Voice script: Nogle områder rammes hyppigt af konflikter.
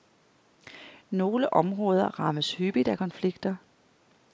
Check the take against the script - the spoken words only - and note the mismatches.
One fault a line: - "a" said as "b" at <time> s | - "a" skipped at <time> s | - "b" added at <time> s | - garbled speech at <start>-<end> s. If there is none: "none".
none